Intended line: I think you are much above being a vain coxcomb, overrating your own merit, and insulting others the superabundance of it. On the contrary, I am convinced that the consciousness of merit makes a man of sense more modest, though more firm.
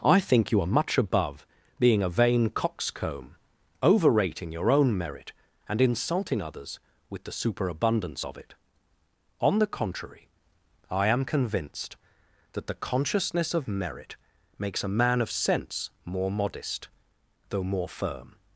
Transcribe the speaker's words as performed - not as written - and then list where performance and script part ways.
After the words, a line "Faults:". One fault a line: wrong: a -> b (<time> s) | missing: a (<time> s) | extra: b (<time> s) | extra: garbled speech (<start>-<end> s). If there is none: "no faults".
I think you are much above being a vain coxcomb, overrating your own merit, and insulting others with the superabundance of it. On the contrary, I am convinced that the consciousness of merit makes a man of sense more modest, though more firm.
Faults:
extra: with (7.1 s)